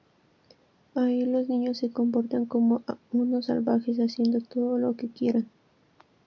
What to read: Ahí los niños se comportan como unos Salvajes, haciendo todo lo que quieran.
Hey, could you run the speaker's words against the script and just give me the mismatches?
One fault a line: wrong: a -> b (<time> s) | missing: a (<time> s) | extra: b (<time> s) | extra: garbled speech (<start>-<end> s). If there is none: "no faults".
no faults